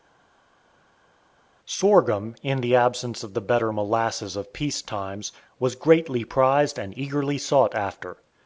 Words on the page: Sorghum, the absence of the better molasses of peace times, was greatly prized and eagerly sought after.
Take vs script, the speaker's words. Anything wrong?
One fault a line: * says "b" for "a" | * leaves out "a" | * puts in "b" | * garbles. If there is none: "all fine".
* puts in "in"